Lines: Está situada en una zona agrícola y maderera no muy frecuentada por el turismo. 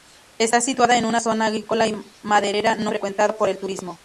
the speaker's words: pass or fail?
fail